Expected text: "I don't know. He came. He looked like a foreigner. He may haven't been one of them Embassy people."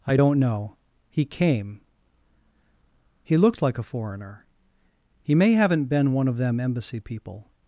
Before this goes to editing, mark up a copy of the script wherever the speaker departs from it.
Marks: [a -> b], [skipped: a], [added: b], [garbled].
"I don't know. He came. He looked like a foreigner. He may haven't been one of them Embassy people."